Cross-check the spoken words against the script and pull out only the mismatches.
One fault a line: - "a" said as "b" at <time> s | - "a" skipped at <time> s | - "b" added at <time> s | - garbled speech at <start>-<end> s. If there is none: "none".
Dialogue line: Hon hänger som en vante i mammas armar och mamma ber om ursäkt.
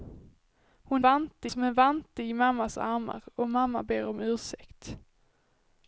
- "hänger" said as "vante" at 1.0 s